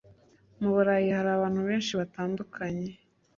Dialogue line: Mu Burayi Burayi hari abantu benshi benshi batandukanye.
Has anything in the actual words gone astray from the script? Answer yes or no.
yes